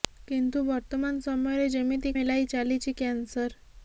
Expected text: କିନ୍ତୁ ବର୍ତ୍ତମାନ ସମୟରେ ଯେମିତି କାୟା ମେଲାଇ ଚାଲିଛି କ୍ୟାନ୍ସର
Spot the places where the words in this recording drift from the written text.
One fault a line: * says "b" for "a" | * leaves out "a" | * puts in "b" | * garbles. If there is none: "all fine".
* leaves out "କାୟା"